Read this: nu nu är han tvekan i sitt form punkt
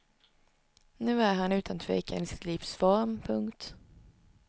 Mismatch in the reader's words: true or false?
true